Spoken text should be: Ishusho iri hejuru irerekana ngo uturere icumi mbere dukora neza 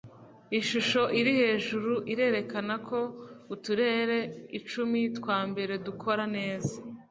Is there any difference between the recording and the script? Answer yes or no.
yes